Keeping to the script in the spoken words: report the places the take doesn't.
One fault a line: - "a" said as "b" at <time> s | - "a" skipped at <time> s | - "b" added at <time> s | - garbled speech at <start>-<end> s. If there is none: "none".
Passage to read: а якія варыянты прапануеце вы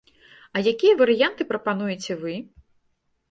none